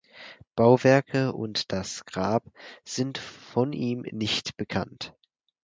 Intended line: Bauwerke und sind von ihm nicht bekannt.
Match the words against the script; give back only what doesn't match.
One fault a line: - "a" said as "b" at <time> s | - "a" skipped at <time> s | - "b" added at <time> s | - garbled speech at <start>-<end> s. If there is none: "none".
- "das Grab" added at 1.7 s